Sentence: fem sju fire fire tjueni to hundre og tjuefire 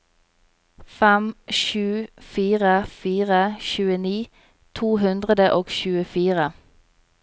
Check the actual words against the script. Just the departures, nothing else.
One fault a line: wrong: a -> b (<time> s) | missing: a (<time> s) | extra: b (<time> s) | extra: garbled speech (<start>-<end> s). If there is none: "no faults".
no faults